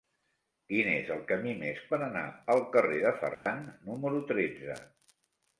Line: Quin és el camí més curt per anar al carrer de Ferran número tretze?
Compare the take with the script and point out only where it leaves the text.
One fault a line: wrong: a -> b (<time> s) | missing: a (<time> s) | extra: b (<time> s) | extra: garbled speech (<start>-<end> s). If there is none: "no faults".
missing: curt (1.8 s)